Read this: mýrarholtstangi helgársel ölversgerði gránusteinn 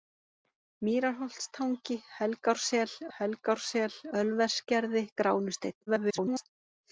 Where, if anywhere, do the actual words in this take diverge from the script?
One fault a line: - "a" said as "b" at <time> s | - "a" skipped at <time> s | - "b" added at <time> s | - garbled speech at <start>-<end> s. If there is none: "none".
- "helgársel" added at 3.2 s
- garbled speech at 5.9-6.5 s